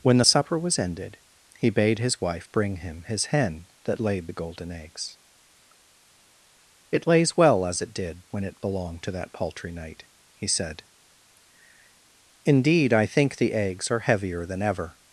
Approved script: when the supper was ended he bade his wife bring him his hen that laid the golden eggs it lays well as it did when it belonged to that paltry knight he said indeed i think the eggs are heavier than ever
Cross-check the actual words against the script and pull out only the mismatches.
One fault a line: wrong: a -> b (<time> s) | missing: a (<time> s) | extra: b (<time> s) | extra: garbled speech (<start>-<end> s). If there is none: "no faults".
no faults